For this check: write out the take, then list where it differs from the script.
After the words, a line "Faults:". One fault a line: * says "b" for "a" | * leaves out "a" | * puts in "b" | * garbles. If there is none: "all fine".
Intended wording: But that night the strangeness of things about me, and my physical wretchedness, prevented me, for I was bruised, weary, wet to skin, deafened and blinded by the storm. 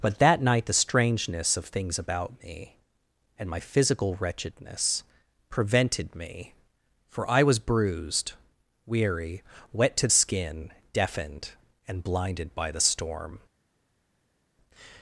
But that night the strangeness of things about me, and my physical wretchedness, prevented me, for I was bruised, weary, wet to skin, deafened and blinded by the storm.
Faults:
all fine